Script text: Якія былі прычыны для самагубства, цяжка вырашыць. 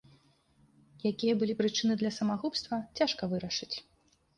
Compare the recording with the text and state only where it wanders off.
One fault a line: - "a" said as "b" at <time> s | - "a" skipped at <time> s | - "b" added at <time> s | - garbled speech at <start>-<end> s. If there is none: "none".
none